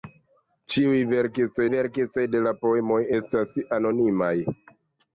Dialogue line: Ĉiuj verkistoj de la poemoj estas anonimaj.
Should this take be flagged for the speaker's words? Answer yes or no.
yes